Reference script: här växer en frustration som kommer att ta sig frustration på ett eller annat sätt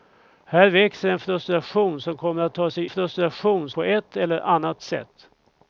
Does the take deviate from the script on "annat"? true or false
false